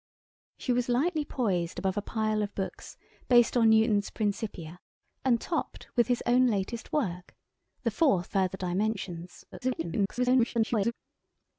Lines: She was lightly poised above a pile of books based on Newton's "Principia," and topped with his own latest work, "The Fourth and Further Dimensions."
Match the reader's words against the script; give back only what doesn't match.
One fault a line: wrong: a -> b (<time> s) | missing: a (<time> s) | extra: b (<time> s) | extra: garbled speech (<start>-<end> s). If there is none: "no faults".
missing: and (8.3 s)
extra: garbled speech (9.5-10.9 s)